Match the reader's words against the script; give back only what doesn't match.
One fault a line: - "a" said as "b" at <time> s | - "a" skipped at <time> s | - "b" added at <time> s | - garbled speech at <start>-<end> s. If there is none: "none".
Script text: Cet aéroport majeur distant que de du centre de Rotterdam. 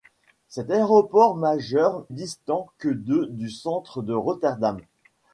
none